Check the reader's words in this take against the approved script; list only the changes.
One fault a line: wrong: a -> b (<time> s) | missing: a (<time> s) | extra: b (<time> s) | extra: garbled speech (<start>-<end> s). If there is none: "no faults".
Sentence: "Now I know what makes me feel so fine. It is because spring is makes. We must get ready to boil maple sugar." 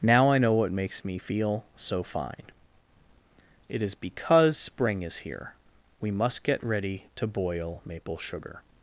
wrong: makes -> here (5.2 s)